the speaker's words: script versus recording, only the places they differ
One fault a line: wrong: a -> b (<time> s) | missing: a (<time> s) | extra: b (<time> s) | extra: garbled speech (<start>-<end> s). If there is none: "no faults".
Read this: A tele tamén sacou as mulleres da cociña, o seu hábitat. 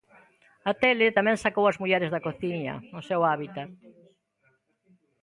no faults